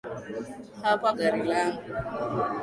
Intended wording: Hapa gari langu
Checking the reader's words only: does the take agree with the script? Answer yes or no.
yes